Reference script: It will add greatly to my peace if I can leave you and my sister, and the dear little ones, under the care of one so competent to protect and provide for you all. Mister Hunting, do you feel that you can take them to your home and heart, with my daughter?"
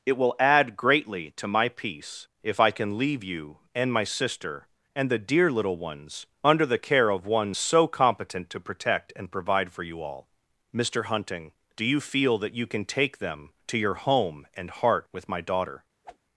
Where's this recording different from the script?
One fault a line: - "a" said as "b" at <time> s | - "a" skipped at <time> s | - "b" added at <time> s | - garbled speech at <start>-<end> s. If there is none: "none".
none